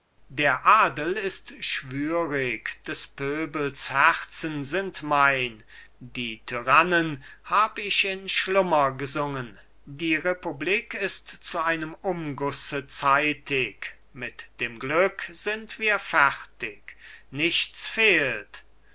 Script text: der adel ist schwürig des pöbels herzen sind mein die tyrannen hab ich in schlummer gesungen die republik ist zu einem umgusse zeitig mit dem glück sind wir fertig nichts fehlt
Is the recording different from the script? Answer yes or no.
no